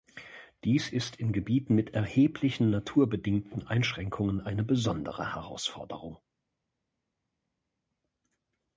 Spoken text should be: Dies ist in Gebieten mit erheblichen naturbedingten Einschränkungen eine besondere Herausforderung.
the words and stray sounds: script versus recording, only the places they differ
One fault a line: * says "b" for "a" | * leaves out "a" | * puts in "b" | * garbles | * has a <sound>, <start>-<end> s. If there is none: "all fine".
all fine